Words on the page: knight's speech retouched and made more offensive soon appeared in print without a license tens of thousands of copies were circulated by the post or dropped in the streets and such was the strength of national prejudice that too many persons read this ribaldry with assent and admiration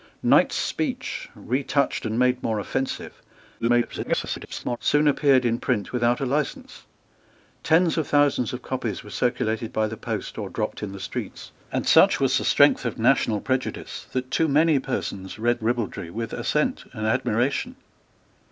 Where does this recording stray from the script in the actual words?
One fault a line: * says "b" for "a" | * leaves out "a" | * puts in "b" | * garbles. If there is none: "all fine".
* garbles
* leaves out "this"